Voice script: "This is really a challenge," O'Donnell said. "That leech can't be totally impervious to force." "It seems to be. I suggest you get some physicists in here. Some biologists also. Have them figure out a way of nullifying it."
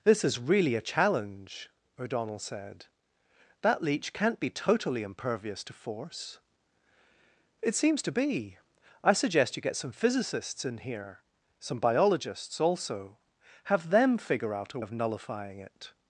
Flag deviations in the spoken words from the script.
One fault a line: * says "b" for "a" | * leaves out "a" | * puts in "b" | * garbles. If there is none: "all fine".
* leaves out "way"